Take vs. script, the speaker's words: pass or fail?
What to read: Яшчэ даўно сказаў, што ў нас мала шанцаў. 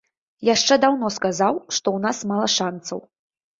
pass